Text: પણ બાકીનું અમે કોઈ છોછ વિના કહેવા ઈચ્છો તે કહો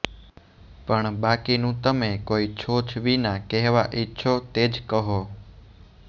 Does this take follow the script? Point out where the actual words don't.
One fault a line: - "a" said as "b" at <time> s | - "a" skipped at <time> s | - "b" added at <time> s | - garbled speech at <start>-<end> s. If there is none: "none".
- "અમે" said as "તમે" at 1.8 s
- "જ" added at 4.7 s